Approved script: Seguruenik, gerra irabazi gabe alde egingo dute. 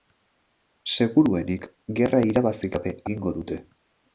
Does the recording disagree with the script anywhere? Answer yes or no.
yes